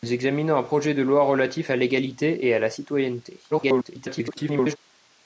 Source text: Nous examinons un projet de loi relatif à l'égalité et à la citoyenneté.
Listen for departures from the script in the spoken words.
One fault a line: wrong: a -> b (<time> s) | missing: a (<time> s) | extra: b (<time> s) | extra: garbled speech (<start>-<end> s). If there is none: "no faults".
extra: garbled speech (3.5-4.8 s)